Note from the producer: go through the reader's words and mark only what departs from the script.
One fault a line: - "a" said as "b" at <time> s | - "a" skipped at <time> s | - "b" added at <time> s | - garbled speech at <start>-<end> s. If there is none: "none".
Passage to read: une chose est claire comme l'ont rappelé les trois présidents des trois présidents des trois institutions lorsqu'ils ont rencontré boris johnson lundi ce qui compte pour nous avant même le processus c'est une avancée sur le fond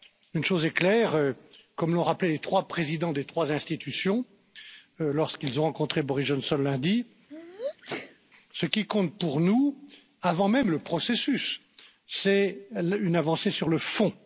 - "présidents des trois" skipped at 3.5 s